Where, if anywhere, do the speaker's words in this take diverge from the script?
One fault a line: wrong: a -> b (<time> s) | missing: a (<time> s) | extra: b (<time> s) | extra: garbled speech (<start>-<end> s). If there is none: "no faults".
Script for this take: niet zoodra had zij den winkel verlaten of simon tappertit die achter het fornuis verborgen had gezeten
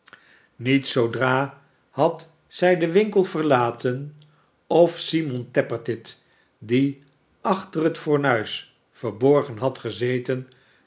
no faults